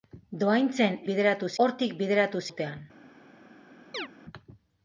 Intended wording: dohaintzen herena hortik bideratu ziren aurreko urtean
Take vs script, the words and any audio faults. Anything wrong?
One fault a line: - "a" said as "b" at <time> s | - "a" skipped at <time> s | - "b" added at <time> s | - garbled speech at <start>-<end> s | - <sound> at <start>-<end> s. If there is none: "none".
- "herena" said as "bideratu" at 1.1 s
- "ziren aurreko" skipped at 2.4 s
- chirp at 3.9-4.1 s